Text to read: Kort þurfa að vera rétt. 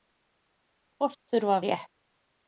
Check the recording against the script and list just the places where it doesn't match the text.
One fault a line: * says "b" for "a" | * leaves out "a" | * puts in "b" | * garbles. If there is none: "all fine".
* leaves out "vera"